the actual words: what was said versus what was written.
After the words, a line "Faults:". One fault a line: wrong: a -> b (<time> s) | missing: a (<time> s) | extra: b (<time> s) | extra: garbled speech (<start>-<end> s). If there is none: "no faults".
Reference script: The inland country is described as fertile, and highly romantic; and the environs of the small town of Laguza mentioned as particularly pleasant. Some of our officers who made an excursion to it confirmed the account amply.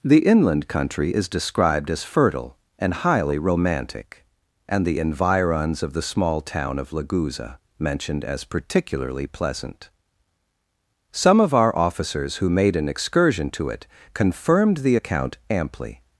The inland country is described as fertile, and highly romantic; and the environs of the small town of Laguza mentioned as particularly pleasant. Some of our officers who made an excursion to it confirmed the account amply.
Faults:
no faults